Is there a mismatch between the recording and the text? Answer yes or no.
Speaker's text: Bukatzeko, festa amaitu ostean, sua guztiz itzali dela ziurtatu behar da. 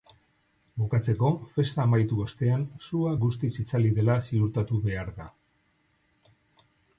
no